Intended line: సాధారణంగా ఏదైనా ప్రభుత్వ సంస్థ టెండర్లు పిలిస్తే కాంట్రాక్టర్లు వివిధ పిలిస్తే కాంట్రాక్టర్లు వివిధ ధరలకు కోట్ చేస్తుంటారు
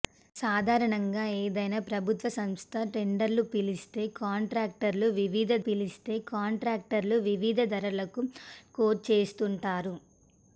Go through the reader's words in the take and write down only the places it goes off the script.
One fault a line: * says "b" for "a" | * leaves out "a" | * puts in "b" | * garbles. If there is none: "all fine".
all fine